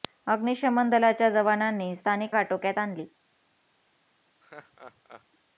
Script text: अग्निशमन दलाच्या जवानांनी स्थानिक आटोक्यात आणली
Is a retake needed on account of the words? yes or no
no